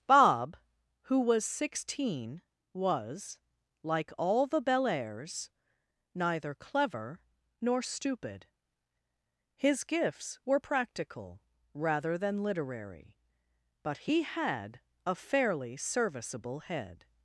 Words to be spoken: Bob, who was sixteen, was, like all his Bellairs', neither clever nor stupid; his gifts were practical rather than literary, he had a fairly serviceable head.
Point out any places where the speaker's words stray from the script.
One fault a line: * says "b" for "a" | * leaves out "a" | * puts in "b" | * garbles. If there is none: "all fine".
* says "the" for "his"
* puts in "but"